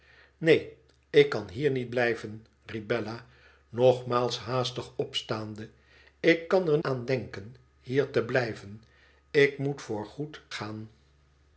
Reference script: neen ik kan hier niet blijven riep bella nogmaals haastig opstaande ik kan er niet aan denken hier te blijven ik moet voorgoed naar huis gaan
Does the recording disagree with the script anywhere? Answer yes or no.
yes